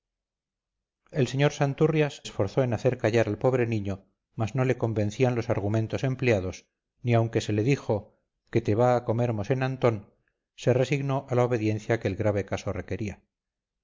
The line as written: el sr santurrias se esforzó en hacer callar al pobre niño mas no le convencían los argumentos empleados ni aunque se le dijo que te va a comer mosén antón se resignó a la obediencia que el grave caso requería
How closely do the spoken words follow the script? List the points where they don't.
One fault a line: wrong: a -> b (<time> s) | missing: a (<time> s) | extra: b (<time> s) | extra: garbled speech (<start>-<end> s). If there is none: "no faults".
missing: se (2.2 s)